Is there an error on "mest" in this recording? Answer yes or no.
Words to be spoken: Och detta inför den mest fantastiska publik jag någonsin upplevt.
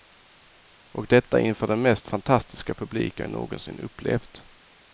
no